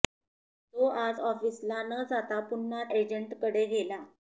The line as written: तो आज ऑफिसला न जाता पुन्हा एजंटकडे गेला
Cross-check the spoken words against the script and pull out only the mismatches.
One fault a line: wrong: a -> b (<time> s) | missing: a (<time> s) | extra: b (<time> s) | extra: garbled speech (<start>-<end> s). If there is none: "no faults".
no faults